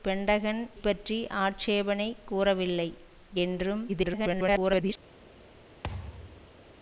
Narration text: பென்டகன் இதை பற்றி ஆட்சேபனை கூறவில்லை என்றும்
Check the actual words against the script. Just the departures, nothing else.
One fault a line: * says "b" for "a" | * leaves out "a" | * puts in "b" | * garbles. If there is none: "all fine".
* leaves out "இதை"
* garbles